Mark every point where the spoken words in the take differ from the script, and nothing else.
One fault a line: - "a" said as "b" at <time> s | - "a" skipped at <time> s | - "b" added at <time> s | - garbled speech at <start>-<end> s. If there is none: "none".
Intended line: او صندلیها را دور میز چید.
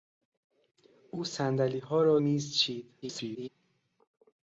- "دور" skipped at 2.2 s
- garbled speech at 3.0-3.5 s